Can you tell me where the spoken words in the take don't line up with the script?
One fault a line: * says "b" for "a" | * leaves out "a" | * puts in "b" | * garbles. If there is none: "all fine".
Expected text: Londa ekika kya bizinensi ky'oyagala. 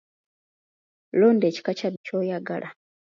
* leaves out "bizinensi"